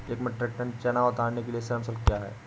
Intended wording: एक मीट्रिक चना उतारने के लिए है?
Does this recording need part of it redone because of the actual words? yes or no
yes